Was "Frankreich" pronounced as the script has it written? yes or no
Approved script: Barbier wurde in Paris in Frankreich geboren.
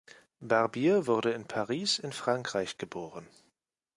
yes